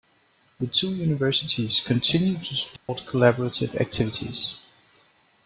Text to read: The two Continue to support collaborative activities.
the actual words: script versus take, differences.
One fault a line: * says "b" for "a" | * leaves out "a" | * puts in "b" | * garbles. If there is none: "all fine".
* puts in "Universities"